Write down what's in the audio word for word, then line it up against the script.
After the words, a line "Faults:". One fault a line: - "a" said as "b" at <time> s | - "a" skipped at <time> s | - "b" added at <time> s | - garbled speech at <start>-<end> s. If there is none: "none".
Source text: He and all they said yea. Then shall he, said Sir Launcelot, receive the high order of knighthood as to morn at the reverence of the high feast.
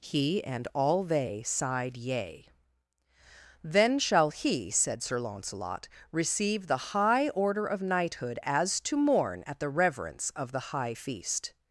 He and all they sighed yea. Then shall he, said Sir Launcelot, receive the high order of knighthood as to morn at the reverence of the high feast.
Faults:
- "said" said as "sighed" at 1.4 s